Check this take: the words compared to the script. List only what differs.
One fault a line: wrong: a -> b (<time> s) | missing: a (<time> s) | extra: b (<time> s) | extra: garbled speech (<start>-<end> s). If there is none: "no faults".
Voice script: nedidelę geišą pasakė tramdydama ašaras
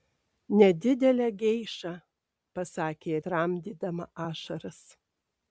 no faults